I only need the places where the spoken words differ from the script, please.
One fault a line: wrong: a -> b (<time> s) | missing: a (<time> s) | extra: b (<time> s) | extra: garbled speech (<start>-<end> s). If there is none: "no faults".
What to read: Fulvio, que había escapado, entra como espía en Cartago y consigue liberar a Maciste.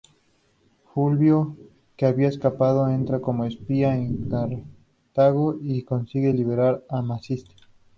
no faults